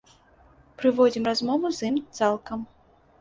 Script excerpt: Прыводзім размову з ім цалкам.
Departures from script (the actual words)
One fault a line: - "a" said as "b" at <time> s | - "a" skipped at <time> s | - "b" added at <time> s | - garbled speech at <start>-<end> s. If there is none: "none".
none